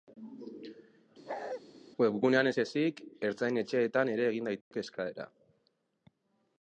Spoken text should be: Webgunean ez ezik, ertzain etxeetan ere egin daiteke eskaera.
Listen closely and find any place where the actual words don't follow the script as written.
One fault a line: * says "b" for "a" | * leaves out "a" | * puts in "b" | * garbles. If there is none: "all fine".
all fine